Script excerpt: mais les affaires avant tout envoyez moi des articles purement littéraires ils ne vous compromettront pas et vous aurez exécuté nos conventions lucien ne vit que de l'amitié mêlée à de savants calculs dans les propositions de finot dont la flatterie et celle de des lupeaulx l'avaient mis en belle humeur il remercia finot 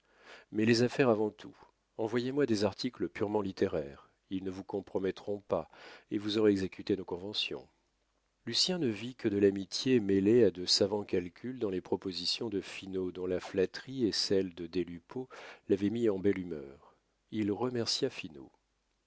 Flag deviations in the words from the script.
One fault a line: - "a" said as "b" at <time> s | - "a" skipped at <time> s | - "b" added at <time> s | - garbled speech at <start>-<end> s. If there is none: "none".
none